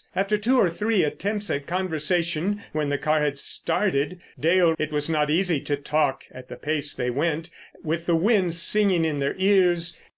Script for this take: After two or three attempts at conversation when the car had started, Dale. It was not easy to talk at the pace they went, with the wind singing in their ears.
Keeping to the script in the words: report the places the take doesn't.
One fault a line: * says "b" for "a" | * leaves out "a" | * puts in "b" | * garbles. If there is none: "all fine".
all fine